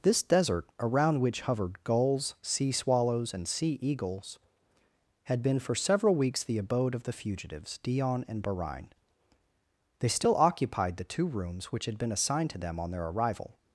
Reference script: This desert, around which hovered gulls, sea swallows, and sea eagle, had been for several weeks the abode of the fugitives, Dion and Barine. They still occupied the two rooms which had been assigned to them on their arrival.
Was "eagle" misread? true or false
true